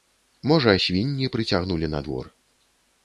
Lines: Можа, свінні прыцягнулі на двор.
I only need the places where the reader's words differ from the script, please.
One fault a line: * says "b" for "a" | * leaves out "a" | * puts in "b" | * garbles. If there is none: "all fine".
all fine